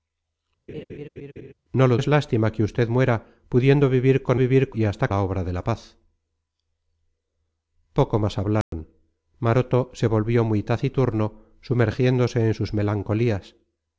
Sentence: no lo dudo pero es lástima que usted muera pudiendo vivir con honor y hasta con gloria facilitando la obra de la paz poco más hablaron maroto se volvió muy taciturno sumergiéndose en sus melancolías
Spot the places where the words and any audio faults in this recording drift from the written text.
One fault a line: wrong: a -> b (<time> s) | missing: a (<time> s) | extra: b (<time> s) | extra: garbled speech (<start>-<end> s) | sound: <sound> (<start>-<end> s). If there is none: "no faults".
sound: laugh (0.7-1.5 s)
missing: dudo pero (2.0 s)
wrong: honor -> vivir (4.4 s)
missing: con gloria facilitando (5.1 s)
sound: dropout (8.6-8.7 s)